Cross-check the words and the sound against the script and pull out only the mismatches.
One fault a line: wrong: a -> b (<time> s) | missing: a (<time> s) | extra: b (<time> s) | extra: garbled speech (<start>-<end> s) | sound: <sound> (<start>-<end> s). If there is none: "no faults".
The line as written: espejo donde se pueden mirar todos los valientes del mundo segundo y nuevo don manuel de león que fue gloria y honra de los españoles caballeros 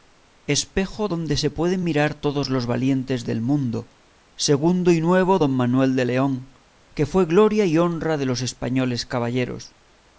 no faults